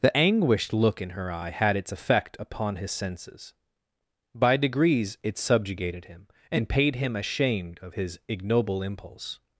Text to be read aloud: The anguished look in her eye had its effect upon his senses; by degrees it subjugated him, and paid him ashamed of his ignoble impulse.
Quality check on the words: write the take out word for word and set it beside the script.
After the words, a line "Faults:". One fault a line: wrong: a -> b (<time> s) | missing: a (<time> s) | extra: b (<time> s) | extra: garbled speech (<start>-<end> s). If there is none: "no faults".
The anguished look in her eye had its effect upon his senses; by degrees it subjugated him, and paid him ashamed of his ignoble impulse.
Faults:
no faults